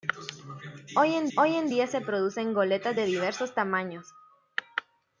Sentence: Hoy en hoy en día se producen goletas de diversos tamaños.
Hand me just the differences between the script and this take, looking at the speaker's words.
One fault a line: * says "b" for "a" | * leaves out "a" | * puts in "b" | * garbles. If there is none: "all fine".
all fine